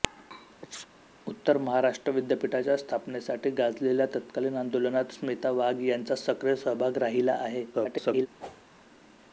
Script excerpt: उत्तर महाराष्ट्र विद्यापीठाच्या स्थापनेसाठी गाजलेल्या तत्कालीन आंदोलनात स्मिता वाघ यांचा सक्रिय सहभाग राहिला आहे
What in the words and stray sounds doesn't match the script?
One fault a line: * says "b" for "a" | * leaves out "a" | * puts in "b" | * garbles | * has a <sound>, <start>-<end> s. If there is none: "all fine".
* has a sneeze, 0.6-0.9 s
* garbles
* has a whoosh, 8.4-8.6 s